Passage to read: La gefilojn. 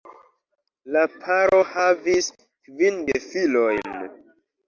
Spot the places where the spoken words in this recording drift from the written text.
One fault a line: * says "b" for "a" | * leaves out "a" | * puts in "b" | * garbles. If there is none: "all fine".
* puts in "paro havis kvin"